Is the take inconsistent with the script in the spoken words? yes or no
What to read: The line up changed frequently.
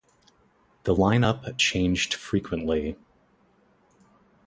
no